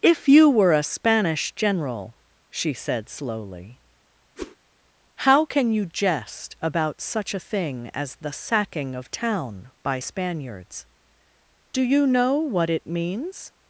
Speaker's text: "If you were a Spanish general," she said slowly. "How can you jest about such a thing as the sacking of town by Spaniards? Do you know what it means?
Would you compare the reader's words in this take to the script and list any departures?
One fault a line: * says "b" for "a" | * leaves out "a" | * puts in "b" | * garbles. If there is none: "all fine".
all fine